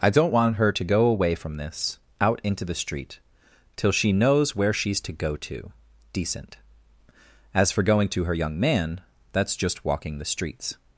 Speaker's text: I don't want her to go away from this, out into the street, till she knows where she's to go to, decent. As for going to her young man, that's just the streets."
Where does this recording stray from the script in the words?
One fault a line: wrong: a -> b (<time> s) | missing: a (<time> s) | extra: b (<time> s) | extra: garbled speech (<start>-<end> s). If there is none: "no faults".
extra: walking (9.8 s)